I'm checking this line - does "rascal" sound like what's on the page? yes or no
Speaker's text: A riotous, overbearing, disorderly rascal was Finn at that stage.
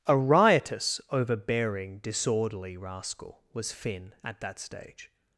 yes